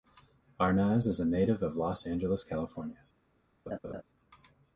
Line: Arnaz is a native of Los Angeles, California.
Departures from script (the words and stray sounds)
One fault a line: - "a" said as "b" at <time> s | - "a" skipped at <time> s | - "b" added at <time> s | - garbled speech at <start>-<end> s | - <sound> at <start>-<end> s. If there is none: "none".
- laugh at 3.7-4.0 s